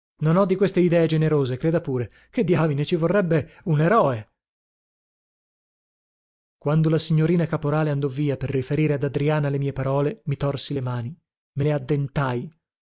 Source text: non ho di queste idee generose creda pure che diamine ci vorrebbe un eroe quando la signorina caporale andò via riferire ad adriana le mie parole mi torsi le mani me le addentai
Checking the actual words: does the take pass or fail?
fail